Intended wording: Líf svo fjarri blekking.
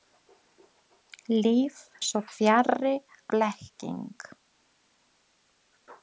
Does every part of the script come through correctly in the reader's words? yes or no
yes